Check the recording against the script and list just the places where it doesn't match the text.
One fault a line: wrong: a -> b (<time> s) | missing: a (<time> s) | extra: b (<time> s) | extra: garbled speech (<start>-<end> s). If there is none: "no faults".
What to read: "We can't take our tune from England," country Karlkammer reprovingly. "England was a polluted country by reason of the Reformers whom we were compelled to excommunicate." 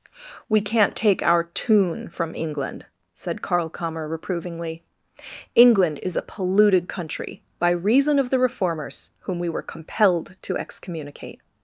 wrong: country -> said (3.1 s)
wrong: was -> is (6.0 s)